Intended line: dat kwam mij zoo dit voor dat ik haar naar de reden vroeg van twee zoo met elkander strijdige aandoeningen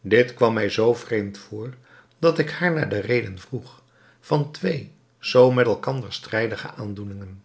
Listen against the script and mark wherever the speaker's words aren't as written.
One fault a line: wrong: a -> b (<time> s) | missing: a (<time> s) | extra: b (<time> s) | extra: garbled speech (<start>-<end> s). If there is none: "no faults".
wrong: dat -> dit (0.0 s)
wrong: dit -> vreemd (0.9 s)